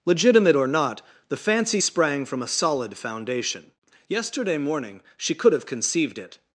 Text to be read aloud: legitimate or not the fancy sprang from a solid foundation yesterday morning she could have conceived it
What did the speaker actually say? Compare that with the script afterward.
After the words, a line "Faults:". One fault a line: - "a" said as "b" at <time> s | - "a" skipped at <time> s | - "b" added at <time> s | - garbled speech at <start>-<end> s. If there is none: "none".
legitimate or not the fancy sprang from a solid foundation yesterday morning she could have conceived it
Faults:
none